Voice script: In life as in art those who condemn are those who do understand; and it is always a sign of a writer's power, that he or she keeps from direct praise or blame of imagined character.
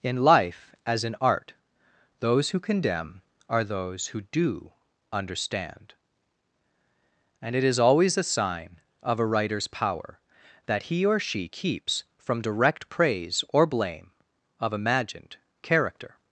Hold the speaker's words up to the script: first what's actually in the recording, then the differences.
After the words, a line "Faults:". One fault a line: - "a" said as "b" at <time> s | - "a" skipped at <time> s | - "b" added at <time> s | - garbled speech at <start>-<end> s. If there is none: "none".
In life as in art those who condemn are those who do understand; and it is always a sign of a writer's power, that he or she keeps from direct praise or blame of imagined character.
Faults:
none